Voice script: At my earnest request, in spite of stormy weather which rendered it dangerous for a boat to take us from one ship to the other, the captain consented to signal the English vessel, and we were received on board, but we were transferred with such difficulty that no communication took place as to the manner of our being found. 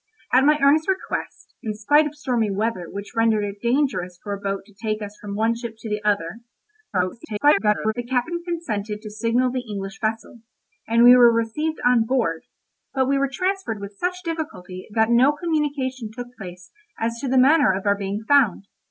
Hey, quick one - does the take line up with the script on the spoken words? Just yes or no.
no